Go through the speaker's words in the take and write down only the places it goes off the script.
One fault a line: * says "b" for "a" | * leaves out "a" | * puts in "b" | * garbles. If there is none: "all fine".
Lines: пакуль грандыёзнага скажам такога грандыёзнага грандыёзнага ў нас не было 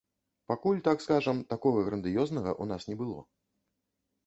* says "так" for "грандыёзнага"
* leaves out "грандыёзнага"